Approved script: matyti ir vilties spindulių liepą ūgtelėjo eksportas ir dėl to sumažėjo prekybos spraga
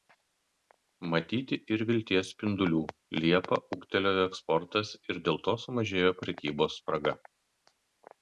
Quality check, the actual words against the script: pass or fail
pass